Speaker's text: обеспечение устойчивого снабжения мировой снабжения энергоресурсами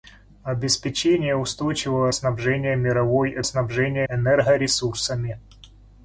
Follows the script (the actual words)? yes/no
yes